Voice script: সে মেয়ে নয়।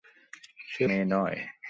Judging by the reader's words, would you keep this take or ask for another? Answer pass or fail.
pass